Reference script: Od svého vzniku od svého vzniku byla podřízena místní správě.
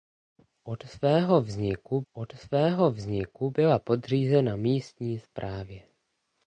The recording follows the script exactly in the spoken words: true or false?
true